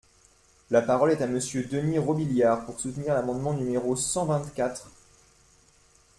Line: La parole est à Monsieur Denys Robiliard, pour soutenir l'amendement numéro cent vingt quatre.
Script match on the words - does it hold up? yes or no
yes